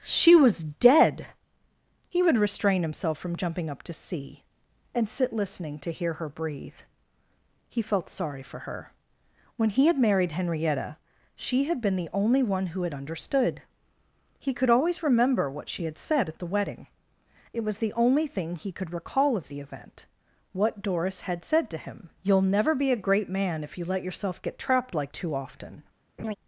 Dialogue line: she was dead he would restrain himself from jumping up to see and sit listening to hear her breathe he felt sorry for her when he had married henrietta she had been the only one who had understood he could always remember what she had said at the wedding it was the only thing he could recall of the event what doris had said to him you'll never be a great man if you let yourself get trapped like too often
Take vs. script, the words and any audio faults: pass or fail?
fail